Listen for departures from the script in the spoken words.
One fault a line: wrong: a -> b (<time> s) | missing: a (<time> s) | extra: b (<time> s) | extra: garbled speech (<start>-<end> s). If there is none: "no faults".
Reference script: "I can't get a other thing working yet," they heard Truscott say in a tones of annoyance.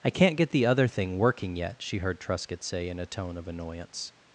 wrong: a -> the (0.5 s)
wrong: they -> she (1.8 s)
wrong: tones -> tone (3.1 s)